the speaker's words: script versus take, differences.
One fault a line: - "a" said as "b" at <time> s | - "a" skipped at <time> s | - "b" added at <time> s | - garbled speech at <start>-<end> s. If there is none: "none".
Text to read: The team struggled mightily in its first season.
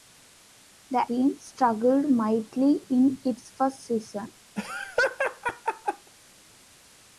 none